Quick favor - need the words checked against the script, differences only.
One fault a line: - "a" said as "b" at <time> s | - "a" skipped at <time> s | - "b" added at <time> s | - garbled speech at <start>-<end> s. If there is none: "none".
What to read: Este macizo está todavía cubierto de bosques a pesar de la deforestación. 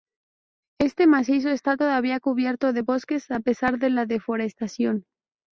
none